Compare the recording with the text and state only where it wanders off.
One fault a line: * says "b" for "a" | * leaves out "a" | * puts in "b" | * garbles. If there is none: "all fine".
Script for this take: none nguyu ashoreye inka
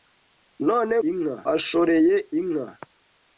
* says "inka" for "nguyu"